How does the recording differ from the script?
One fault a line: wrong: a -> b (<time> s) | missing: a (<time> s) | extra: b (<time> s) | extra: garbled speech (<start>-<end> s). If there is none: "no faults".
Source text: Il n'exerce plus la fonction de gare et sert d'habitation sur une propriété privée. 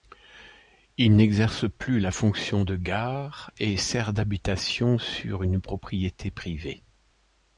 no faults